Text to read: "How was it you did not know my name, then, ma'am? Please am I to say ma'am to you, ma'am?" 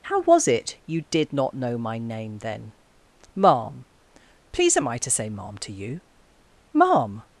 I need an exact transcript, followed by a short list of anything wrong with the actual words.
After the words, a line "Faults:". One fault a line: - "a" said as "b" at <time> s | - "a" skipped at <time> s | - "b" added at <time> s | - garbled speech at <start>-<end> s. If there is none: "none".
"How was it you did not know my name, then, ma'am? Please am I to say ma'am to you, ma'am?"
Faults:
none